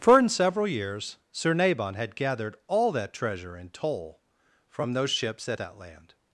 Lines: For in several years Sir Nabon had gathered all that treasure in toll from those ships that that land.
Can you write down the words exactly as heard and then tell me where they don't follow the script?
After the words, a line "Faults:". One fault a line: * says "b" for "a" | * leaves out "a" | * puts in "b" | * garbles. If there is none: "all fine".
For in several years Sir Nabon had gathered all that treasure in toll from those ships that that land.
Faults:
all fine